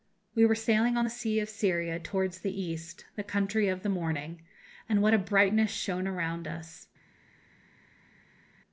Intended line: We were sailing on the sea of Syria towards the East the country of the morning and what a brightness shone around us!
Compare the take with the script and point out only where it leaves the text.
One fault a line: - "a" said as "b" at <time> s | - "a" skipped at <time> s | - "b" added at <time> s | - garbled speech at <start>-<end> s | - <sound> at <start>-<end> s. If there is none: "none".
none